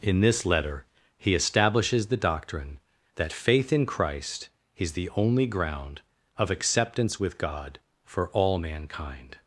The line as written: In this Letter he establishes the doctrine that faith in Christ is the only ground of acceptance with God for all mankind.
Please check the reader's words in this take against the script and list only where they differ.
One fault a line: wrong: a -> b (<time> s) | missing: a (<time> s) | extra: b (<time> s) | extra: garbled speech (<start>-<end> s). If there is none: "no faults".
no faults